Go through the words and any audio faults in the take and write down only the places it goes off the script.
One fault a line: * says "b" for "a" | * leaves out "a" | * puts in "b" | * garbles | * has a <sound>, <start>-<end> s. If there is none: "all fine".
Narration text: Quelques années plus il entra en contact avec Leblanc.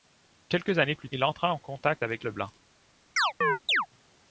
* has a chirp, 3.2-3.9 s